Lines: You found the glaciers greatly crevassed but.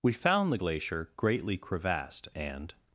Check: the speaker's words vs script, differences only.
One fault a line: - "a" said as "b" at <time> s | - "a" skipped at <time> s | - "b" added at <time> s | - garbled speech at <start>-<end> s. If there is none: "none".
- "You" said as "We" at 0.0 s
- "glaciers" said as "glacier" at 0.5 s
- "but" said as "and" at 2.4 s